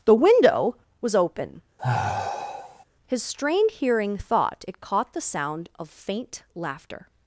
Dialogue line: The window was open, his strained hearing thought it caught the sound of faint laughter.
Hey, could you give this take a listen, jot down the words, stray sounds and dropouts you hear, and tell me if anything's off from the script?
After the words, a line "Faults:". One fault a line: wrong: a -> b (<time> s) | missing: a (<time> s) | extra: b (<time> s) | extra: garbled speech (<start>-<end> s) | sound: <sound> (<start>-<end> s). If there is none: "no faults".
The window was open, his strained hearing thought it caught the sound of faint laughter.
Faults:
sound: sigh (1.8-2.8 s)